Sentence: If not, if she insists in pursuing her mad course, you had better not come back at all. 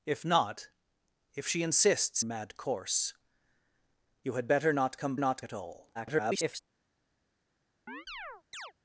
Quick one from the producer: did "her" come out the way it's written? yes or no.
no